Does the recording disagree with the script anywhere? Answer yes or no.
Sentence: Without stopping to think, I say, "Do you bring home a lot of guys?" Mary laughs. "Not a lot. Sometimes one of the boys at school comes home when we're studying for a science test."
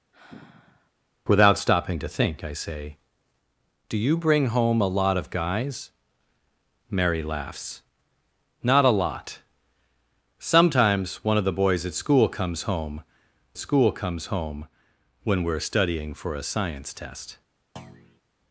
yes